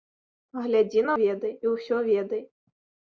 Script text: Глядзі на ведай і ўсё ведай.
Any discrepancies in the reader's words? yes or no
no